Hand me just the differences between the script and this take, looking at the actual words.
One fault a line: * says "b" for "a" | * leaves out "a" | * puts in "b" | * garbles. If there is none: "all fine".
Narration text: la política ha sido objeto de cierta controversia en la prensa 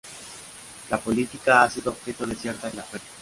* leaves out "controversia"